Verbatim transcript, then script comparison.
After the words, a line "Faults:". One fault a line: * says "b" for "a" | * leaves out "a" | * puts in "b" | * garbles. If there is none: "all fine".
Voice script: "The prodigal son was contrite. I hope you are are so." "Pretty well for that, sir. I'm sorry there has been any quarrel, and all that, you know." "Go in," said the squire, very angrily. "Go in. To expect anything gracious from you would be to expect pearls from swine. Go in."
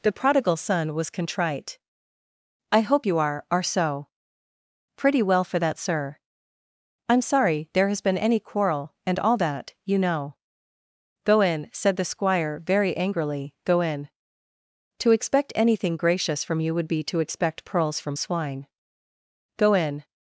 "The prodigal son was contrite. I hope you are are so." "Pretty well for that, sir. I'm sorry there has been any quarrel, and all that, you know." "Go in," said the squire, very angrily. "Go in. To expect anything gracious from you would be to expect pearls from swine. Go in."
Faults:
all fine